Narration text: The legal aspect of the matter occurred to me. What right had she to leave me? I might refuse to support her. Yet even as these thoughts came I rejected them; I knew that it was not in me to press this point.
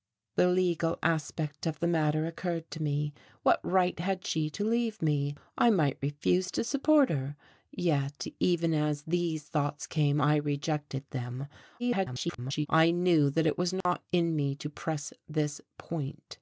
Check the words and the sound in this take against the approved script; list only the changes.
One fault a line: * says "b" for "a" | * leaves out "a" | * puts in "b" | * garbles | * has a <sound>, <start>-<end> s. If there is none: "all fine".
* garbles
* has a dropout, 13.8-13.9 s